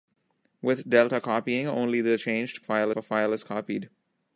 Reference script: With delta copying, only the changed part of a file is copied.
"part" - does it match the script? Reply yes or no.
no